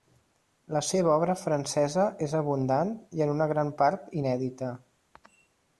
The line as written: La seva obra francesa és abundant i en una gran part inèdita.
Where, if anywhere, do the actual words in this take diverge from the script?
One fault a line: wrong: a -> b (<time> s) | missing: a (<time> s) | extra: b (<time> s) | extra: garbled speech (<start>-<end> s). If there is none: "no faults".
no faults